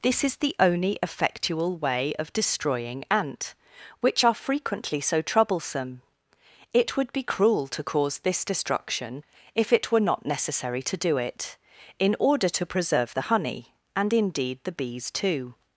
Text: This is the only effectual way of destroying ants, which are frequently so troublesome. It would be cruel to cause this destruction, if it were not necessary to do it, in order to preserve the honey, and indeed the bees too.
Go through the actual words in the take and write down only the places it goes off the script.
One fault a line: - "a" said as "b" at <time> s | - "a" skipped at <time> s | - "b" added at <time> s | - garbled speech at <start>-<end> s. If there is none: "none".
- "ants" said as "ant" at 3.1 s